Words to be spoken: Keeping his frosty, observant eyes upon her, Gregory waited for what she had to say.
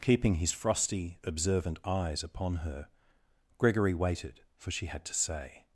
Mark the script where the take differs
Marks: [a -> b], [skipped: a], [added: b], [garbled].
Keeping his frosty, observant eyes upon her, Gregory waited for [skipped: what] she had to say.